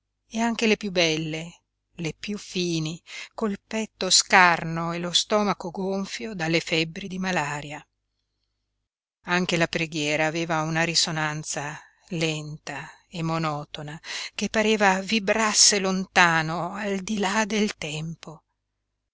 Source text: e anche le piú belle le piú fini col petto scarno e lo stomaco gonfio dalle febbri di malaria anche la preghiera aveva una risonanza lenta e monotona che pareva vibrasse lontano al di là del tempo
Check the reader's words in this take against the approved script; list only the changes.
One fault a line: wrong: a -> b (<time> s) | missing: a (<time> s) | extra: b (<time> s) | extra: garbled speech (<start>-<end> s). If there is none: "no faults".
no faults